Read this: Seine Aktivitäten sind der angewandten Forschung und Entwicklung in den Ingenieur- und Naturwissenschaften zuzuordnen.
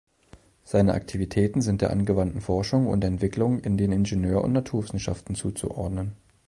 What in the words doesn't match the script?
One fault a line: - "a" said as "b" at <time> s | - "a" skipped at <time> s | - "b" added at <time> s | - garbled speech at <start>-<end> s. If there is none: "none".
none